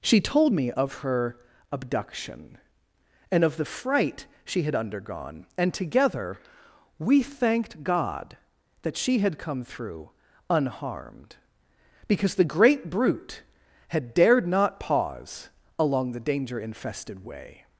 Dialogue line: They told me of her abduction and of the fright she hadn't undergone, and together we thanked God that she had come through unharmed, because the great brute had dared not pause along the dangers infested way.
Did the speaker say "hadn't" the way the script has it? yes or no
no